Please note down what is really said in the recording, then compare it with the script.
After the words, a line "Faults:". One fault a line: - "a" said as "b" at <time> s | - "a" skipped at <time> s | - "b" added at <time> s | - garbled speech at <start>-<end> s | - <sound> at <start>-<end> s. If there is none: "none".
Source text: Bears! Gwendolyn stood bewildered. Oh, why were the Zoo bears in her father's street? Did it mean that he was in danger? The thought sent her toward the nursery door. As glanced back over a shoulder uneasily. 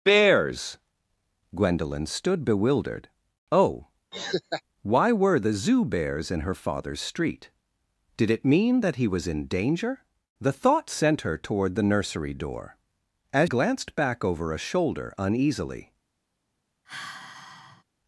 Bears! Gwendolyn stood bewildered. Oh, why were the Zoo bears in her father's street? Did it mean that he was in danger? The thought sent her toward the nursery door. As glanced back over a shoulder uneasily.
Faults:
- laugh at 4.1-4.6 s
- sigh at 16.8-17.8 s